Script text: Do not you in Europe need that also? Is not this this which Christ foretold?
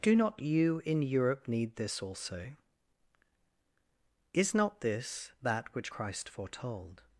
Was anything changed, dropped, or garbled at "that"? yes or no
yes